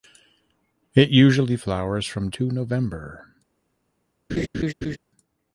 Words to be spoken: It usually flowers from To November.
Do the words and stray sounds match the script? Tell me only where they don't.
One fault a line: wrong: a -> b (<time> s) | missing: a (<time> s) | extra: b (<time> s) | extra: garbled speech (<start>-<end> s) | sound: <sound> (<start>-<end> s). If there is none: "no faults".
sound: laugh (4.3-5.0 s)